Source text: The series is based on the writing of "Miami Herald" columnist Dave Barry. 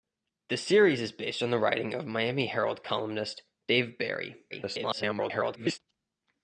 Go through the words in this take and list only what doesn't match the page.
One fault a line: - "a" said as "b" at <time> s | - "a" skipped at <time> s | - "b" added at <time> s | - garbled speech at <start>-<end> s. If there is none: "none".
- garbled speech at 4.5-5.8 s